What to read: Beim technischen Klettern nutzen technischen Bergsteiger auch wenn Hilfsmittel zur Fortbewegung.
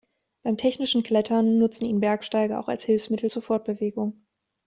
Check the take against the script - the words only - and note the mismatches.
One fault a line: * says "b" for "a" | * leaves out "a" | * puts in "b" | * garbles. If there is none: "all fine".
* says "ihn" for "technischen"
* says "als" for "wenn"